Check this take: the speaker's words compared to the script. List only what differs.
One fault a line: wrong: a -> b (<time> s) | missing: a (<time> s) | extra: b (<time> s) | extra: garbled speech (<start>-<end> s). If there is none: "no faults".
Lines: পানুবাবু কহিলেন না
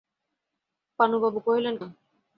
no faults